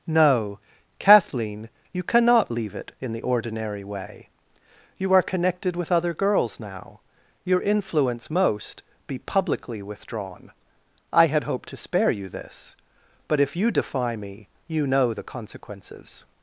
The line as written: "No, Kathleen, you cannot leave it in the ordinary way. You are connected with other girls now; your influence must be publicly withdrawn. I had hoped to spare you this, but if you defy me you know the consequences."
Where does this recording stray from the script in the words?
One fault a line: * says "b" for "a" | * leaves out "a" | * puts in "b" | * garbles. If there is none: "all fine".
* says "most" for "must"